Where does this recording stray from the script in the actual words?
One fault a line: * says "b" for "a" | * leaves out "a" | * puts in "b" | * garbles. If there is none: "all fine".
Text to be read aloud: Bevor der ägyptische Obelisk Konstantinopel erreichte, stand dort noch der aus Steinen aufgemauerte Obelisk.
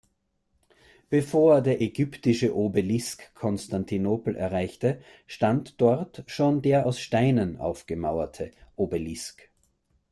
* says "schon" for "noch"